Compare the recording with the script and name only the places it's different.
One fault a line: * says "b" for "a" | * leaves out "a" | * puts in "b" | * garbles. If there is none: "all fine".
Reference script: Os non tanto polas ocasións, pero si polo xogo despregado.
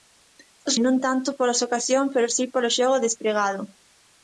all fine